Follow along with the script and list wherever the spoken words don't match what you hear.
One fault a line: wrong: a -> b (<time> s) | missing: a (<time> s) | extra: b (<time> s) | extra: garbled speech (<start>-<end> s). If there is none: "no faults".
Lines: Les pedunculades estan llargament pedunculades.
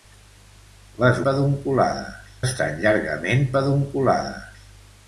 no faults